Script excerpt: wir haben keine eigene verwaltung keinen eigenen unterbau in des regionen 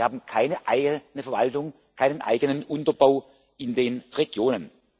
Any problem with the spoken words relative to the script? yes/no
yes